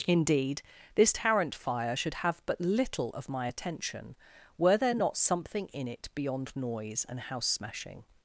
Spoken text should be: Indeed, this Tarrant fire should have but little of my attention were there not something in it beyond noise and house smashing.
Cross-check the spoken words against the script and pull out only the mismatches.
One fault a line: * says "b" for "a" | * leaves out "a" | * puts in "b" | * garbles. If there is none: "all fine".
all fine